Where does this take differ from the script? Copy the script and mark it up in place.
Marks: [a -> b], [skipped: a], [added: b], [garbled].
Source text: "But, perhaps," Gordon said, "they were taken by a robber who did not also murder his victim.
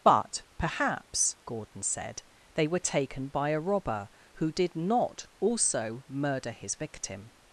"But, perhaps," Gordon said, "they were taken by a robber who did not also murder his victim.